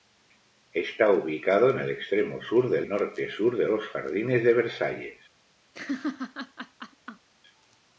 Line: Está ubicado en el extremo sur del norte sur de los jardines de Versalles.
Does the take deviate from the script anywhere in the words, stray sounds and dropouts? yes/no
yes